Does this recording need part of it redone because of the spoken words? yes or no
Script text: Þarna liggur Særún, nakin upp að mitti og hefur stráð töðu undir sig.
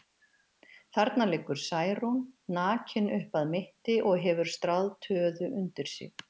no